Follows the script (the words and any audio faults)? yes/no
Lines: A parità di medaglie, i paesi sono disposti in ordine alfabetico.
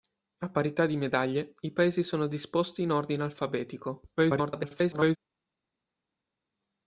no